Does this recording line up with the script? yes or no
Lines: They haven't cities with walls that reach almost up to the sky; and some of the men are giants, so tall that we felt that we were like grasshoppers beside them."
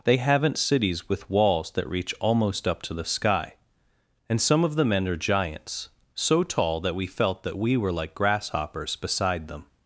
yes